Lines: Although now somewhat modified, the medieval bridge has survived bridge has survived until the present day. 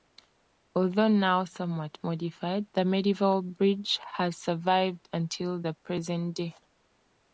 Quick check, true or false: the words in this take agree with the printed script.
false